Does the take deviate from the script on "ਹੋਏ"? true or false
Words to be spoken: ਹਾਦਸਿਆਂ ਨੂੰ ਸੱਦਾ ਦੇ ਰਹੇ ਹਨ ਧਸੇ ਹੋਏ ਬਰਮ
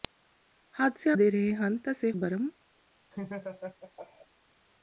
true